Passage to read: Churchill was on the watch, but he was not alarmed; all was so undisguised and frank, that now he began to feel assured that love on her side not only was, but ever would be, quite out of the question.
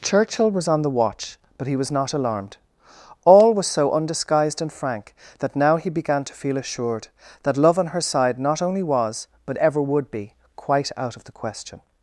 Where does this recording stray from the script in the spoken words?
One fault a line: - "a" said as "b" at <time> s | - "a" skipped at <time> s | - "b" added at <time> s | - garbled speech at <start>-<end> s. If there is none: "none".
none